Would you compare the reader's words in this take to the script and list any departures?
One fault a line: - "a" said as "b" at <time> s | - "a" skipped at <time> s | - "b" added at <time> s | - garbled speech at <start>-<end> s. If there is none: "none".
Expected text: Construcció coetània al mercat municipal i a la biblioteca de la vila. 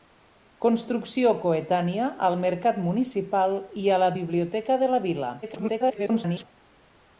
- garbled speech at 5.4-6.4 s